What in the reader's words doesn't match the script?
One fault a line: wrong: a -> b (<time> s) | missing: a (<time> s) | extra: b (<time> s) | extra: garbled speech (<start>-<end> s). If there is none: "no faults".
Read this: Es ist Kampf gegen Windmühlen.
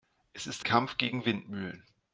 no faults